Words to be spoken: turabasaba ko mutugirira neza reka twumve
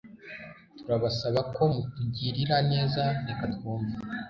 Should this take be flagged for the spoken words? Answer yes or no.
no